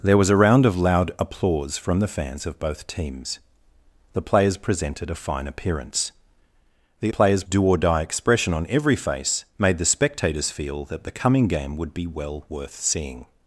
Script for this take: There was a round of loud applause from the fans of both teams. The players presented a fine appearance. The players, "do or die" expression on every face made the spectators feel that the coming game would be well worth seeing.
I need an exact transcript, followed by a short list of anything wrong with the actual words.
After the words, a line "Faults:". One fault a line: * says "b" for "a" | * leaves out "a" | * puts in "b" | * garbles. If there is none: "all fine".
There was a round of loud applause from the fans of both teams. The players presented a fine appearance. The players, "do or die" expression on every face made the spectators feel that the coming game would be well worth seeing.
Faults:
all fine